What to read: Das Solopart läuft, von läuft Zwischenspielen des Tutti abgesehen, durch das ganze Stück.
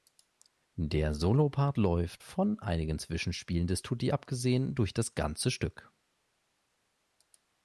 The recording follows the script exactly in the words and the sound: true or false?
false